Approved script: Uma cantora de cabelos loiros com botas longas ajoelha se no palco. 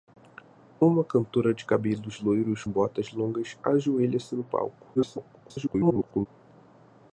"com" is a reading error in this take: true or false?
true